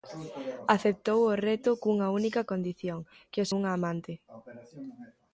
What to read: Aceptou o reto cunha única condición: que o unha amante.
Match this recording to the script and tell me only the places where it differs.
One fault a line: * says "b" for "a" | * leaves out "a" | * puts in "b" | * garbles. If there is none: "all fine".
all fine